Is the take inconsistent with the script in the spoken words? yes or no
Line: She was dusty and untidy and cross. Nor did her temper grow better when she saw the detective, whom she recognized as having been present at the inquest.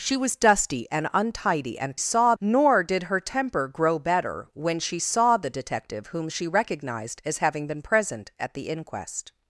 yes